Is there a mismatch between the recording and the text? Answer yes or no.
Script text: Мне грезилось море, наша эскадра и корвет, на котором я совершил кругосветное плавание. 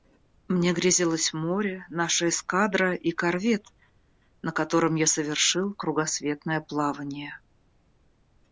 no